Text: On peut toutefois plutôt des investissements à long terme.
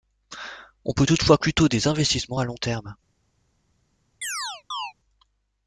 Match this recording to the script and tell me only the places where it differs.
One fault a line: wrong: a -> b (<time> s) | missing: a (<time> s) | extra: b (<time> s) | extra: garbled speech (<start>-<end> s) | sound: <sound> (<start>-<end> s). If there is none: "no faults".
sound: chirp (4.2-4.9 s)